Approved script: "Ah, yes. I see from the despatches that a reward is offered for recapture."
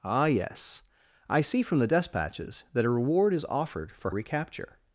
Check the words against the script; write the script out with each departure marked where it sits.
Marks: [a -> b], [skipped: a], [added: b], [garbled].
"Ah, yes. I see from the despatches that a reward is offered for recapture."